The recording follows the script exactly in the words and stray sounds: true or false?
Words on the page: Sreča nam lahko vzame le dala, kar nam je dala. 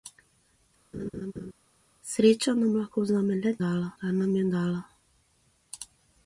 false